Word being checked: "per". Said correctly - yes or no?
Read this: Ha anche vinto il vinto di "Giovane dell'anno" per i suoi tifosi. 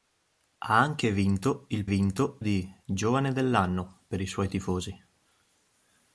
yes